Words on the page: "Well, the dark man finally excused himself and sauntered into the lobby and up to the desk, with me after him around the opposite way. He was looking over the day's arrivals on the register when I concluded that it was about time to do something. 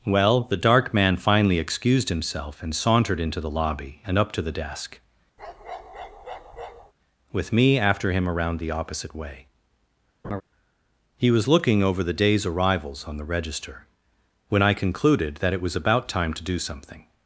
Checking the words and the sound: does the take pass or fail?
fail